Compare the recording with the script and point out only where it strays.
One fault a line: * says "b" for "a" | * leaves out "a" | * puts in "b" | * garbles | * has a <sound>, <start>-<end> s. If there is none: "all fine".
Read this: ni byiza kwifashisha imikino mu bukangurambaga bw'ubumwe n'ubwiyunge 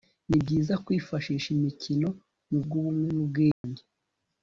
* leaves out "bukangurambaga"
* has a dropout, 3.5-3.6 s